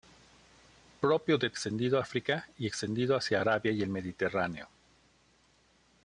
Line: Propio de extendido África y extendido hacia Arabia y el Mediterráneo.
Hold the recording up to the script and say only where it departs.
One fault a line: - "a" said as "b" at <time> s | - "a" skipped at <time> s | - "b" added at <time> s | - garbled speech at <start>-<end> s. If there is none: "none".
none